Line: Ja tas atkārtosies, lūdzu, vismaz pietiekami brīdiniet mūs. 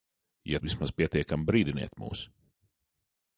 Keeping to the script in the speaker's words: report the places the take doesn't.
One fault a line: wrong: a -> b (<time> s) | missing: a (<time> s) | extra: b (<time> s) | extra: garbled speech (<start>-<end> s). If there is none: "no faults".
missing: tas atkārtosies lūdzu (0.6 s)